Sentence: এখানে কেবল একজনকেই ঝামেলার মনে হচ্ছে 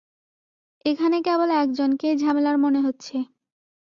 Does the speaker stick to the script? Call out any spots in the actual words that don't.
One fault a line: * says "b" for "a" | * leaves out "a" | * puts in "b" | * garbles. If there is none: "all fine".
all fine